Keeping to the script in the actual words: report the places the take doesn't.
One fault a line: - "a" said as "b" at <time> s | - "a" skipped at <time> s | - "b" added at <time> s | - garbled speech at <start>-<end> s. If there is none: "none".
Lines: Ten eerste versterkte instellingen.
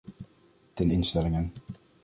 - "eerste versterkte" skipped at 0.9 s